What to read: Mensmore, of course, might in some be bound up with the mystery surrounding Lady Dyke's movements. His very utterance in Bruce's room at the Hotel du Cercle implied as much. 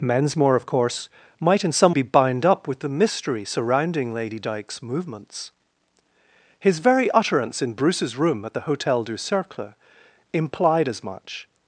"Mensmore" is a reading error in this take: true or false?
false